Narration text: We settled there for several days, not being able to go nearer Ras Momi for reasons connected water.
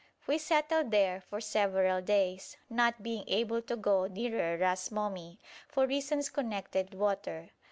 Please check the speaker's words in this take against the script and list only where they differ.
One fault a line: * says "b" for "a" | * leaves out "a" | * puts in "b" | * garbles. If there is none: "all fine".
all fine